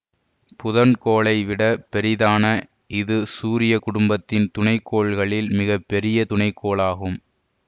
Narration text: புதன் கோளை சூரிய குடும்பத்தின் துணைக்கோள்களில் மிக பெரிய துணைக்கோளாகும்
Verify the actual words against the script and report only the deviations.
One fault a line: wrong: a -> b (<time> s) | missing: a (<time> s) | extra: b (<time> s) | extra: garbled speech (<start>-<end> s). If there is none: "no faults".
extra: விட பெரிதான இது (1.4 s)